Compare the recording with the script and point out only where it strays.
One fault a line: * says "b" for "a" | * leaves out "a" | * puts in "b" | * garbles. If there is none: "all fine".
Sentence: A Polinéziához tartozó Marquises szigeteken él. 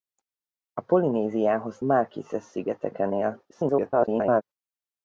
* leaves out "tartozó"
* garbles